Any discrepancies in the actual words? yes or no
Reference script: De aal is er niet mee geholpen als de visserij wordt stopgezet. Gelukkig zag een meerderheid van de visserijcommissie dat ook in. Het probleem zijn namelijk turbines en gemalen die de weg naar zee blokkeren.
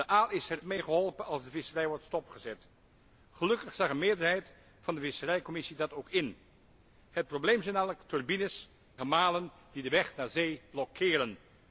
yes